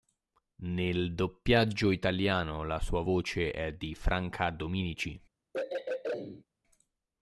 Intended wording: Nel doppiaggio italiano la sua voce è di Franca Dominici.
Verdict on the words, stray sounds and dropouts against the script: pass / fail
fail